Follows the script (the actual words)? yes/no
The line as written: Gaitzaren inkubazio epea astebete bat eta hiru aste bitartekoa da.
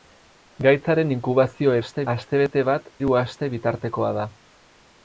no